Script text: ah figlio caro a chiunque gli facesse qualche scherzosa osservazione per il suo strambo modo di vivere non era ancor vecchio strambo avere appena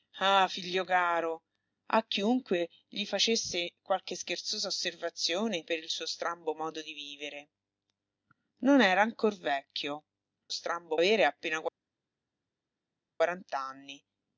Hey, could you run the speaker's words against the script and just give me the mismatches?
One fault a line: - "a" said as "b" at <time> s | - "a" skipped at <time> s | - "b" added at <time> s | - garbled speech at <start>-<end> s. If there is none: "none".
none